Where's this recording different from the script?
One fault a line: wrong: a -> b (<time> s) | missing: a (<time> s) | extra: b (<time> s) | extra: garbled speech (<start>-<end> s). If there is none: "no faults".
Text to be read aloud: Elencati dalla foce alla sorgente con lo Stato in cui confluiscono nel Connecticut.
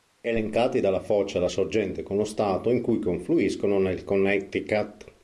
no faults